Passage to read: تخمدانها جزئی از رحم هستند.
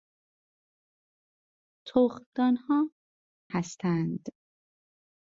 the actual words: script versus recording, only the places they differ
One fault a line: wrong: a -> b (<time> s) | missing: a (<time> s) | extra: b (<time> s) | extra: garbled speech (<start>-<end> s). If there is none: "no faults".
missing: جزئی از رحم (2.9 s)